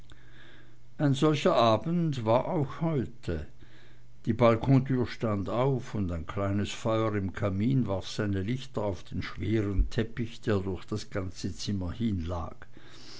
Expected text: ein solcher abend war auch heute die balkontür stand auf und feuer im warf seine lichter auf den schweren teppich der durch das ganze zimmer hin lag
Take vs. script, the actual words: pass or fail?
fail